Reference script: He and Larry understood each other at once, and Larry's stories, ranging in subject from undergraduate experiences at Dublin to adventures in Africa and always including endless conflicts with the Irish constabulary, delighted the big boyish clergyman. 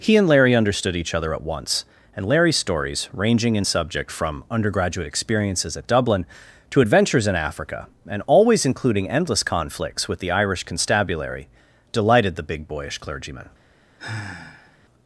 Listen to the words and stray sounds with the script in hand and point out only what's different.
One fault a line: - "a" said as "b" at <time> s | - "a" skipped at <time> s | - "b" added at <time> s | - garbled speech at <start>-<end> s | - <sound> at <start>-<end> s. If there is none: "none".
- sigh at 14.0-14.8 s